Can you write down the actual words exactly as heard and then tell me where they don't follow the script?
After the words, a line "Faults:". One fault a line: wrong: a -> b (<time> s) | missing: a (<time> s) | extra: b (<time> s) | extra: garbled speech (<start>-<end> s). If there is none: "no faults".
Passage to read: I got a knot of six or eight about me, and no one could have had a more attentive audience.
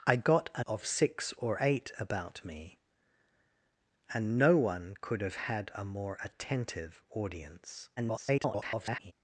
I got a of six or eight about me, and no one could have had a more attentive audience. [garbled]
Faults:
missing: knot (0.6 s)
extra: garbled speech (8.0-9.1 s)